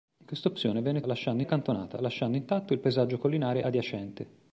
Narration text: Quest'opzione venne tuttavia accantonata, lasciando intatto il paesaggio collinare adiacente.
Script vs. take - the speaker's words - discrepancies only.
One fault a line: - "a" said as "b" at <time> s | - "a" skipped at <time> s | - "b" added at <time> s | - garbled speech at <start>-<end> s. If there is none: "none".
- "tuttavia" said as "lasciando" at 1.1 s